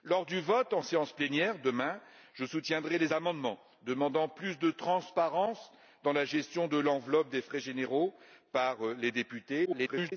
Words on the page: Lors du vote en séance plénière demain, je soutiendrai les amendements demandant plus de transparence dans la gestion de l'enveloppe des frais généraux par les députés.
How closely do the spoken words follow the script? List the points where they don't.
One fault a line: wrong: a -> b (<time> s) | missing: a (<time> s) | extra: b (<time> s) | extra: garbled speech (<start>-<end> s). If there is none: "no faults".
extra: garbled speech (9.6-10.1 s)